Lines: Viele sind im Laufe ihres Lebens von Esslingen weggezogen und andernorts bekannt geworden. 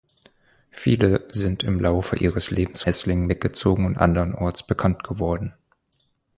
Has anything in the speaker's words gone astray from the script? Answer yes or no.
yes